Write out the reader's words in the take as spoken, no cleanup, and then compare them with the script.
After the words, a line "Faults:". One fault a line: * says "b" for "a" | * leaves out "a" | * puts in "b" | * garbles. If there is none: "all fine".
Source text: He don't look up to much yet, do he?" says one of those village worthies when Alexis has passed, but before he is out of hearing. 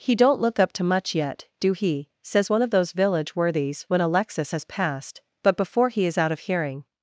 He don't look up to much yet, do he?" says one of those village worthies when Alexis has passed, but before he is out of hearing.
Faults:
all fine